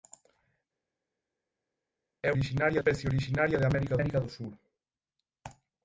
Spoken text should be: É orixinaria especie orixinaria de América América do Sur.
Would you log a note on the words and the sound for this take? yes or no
no